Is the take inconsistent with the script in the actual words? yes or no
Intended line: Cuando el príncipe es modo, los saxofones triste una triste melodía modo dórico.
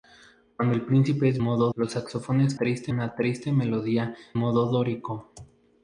no